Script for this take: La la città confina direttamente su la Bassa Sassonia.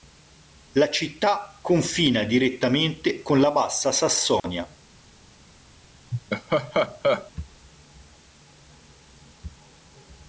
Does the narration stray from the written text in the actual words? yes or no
yes